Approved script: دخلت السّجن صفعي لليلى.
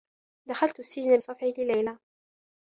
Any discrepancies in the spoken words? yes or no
no